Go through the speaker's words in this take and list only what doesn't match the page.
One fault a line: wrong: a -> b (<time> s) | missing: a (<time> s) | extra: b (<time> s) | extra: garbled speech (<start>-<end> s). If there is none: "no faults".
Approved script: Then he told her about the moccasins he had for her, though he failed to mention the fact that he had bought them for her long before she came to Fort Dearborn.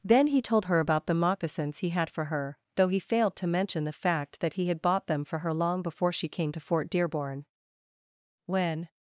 extra: When (8.4 s)